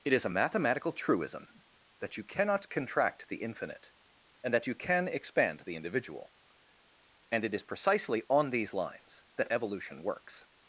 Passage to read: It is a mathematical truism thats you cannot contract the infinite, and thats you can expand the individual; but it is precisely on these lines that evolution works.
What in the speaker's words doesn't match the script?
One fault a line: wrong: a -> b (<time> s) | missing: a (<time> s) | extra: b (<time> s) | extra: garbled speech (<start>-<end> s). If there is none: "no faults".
wrong: thats -> that (2.0 s)
wrong: thats -> that (4.5 s)
wrong: but -> and (7.3 s)